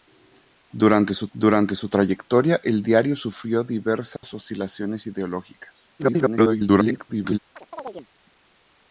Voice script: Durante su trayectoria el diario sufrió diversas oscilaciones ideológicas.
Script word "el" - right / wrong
right